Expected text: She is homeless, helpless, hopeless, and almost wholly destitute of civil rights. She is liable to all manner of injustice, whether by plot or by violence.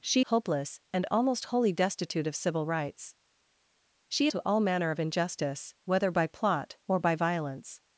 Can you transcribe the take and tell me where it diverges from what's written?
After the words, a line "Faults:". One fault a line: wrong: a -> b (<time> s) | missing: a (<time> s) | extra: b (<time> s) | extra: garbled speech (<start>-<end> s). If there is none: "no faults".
She hopeless, and almost wholly destitute of civil rights. She to all manner of injustice, whether by plot or by violence.
Faults:
missing: is homeless helpless (0.2 s)
missing: is liable (4.3 s)